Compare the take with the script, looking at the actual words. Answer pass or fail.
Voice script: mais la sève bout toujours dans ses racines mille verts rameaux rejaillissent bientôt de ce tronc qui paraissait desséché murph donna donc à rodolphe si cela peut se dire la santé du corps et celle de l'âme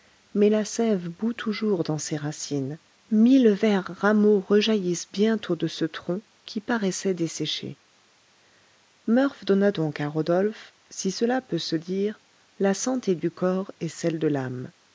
pass